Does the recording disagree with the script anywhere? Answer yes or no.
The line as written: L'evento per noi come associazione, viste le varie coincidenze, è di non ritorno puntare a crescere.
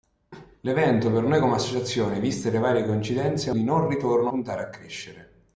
no